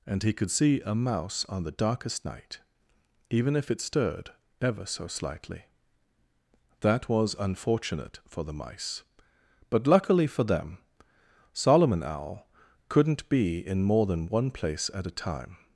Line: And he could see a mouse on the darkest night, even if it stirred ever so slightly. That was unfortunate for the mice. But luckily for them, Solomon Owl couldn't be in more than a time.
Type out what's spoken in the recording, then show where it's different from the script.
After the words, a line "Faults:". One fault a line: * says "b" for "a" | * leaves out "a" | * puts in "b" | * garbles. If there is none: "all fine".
And he could see a mouse on the darkest night, even if it stirred ever so slightly. That was unfortunate for the mice. But luckily for them, Solomon Owl couldn't be in more than one place at a time.
Faults:
* puts in "one place at"